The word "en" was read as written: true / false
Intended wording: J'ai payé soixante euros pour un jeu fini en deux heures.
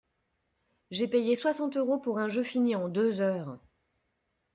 true